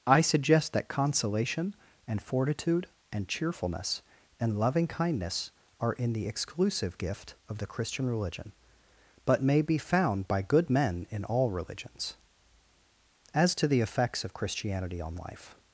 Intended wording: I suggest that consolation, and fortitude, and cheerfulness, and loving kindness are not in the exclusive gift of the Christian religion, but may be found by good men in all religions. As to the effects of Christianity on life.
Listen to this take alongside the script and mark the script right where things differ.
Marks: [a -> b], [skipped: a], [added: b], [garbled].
I suggest that consolation, and fortitude, and cheerfulness, and loving kindness are [skipped: not] in the exclusive gift of the Christian religion, but may be found by good men in all religions. As to the effects of Christianity on life.